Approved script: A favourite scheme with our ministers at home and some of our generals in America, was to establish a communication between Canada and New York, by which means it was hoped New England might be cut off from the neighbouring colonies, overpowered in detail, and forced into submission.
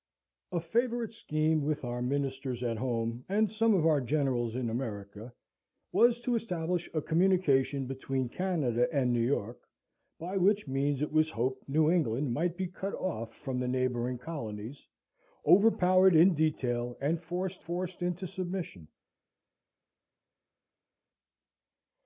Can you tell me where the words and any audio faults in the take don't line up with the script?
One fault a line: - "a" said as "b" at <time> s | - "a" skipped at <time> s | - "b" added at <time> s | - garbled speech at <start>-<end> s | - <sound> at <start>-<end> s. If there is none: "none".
- "forced" added at 17.6 s